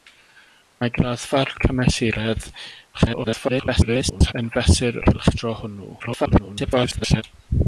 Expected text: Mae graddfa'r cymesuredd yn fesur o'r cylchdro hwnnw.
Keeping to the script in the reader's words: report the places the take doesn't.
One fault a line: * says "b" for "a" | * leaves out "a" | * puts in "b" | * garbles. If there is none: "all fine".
* garbles
* leaves out "o'r"
* garbles